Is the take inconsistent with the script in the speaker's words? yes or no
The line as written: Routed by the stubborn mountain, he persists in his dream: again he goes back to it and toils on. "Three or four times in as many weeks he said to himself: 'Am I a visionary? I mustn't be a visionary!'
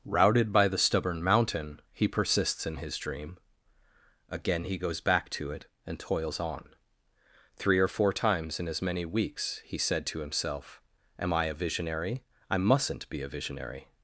no